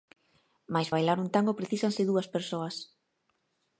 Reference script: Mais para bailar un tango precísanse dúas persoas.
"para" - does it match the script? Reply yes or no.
no